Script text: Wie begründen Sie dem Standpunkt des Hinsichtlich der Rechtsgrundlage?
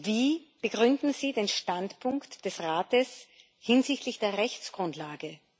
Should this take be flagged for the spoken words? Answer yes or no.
yes